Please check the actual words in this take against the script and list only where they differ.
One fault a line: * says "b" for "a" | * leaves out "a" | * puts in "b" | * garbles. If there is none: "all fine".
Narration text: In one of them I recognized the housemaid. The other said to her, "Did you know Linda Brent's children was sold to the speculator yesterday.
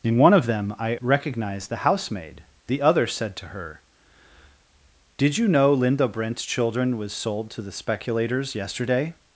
* says "speculators" for "speculator"